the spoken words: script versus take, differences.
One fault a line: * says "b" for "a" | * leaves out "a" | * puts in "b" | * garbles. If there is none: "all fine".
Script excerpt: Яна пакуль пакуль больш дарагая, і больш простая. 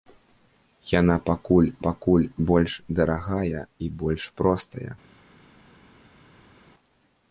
all fine